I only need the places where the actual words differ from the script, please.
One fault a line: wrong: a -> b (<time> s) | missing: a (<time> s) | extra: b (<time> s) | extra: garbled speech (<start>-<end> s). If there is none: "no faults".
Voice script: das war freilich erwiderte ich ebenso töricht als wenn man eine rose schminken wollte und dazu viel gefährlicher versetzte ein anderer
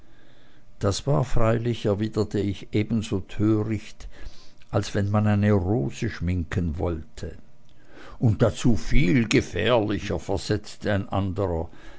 no faults